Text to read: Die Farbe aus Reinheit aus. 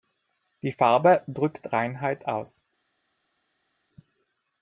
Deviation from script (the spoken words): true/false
true